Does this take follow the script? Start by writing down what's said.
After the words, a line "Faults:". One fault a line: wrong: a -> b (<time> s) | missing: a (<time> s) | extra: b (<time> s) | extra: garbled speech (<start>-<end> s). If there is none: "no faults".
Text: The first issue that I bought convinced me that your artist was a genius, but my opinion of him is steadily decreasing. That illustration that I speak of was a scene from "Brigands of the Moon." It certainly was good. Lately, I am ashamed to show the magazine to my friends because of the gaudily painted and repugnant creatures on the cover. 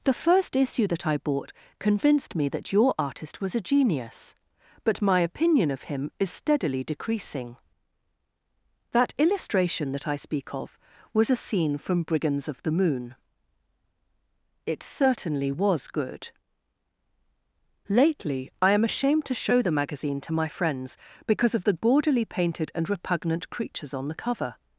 The first issue that I bought convinced me that your artist was a genius, but my opinion of him is steadily decreasing. That illustration that I speak of was a scene from "Brigands of the Moon." It certainly was good. Lately, I am ashamed to show the magazine to my friends because of the gaudily painted and repugnant creatures on the cover.
Faults:
no faults